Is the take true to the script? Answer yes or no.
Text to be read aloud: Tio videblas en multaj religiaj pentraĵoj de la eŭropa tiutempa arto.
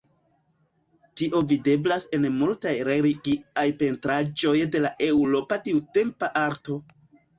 yes